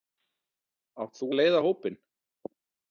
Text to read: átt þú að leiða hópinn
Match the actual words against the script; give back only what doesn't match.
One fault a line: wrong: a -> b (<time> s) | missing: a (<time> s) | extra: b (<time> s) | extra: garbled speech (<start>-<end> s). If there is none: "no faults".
no faults